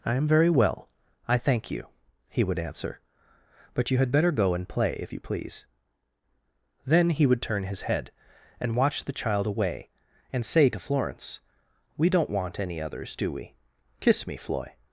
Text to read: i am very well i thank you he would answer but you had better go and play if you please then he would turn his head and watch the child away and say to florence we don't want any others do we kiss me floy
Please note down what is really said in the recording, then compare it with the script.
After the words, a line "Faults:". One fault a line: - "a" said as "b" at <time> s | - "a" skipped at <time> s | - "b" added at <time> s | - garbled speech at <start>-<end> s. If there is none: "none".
i am very well i thank you he would answer but you had better go and play if you please then he would turn his head and watch the child away and say to florence we don't want any others do we kiss me floy
Faults:
none